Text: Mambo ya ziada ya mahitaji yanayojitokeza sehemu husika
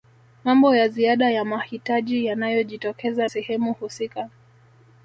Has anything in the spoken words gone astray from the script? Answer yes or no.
no